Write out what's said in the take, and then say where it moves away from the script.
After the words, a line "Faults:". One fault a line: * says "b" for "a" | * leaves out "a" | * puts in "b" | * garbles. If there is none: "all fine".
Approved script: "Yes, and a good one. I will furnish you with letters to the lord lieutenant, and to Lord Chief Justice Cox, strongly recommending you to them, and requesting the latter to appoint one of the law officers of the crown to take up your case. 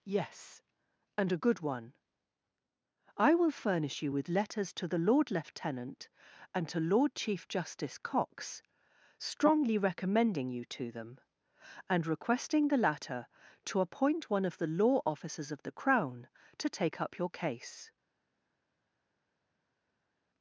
"Yes, and a good one. I will furnish you with letters to the lord lieutenant, and to Lord Chief Justice Cox, strongly recommending you to them, and requesting the latter to appoint one of the law officers of the crown to take up your case.
Faults:
all fine